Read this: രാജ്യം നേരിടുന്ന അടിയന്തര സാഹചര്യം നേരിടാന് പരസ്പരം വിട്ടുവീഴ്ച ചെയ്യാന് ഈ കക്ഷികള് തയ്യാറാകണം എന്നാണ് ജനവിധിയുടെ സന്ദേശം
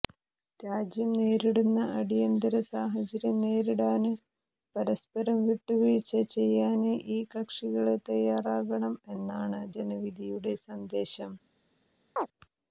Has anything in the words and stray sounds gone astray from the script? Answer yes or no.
yes